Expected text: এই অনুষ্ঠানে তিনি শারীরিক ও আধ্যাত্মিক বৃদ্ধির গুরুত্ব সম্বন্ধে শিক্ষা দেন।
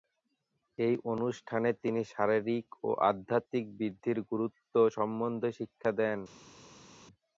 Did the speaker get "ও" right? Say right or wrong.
right